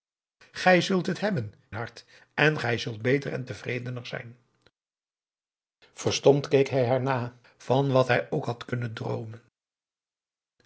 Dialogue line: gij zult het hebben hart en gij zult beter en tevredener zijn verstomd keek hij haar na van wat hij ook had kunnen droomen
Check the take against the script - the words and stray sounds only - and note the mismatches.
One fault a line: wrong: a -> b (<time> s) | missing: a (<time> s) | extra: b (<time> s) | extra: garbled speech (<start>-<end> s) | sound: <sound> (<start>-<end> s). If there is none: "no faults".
no faults